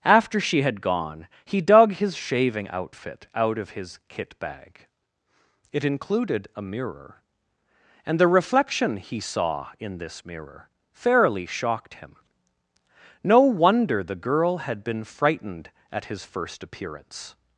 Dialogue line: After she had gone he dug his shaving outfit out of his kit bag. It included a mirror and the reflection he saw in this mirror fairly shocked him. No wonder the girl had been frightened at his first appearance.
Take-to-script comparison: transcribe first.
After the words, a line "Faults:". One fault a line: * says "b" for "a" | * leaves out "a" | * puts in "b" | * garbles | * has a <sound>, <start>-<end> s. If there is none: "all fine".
After she had gone he dug his shaving outfit out of his kit bag. It included a mirror and the reflection he saw in this mirror fairly shocked him. No wonder the girl had been frightened at his first appearance.
Faults:
all fine